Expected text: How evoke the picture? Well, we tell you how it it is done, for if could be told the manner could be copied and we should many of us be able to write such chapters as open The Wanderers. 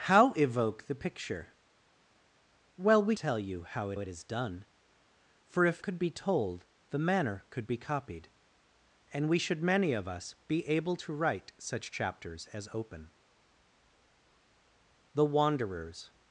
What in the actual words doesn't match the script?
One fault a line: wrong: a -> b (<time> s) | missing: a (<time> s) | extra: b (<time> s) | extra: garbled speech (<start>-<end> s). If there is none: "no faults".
no faults